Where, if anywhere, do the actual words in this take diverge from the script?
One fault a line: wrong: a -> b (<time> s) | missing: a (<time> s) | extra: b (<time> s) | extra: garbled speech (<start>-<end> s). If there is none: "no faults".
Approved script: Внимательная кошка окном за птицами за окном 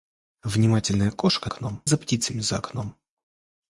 no faults